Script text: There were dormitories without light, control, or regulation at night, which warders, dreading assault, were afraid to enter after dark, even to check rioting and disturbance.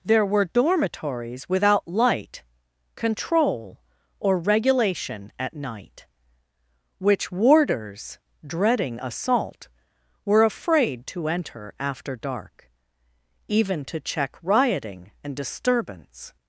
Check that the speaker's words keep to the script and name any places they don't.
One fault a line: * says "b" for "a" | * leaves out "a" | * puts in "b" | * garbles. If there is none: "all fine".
all fine